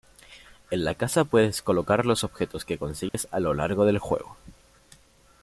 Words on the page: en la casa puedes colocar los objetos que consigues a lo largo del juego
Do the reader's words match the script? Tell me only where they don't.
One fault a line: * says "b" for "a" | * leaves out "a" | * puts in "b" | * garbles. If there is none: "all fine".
all fine